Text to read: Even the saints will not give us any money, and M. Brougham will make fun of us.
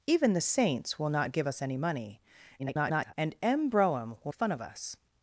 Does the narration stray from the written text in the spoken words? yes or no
yes